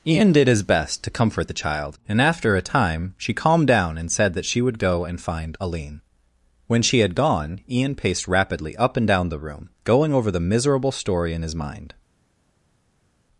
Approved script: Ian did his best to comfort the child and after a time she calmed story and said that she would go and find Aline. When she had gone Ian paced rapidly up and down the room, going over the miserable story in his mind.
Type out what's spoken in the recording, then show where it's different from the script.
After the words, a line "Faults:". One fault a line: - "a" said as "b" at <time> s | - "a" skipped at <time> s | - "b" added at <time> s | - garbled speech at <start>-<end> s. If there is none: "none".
Ian did his best to comfort the child and after a time she calmed down and said that she would go and find Aline. When she had gone Ian paced rapidly up and down the room, going over the miserable story in his mind.
Faults:
- "story" said as "down" at 3.7 s